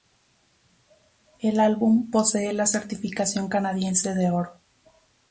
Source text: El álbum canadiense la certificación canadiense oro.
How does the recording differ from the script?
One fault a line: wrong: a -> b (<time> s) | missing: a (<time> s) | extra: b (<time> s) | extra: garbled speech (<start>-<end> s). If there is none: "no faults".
wrong: canadiense -> posee (2.1 s)
extra: de (4.1 s)